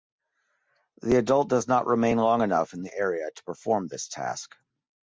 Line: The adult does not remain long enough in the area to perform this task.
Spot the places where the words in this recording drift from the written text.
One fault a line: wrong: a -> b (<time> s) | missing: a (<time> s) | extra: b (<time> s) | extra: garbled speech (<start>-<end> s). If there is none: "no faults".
no faults